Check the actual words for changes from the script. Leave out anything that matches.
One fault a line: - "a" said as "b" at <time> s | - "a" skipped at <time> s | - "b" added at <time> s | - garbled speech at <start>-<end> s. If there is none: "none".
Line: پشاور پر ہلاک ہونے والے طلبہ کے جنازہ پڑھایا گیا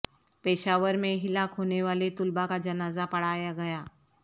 - "پر" said as "میں" at 0.9 s
- "کے" said as "کا" at 2.5 s